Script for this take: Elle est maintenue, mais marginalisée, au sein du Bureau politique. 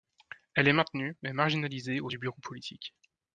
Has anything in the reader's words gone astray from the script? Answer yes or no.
yes